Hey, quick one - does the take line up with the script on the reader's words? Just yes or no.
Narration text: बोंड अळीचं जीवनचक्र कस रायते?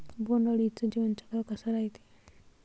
yes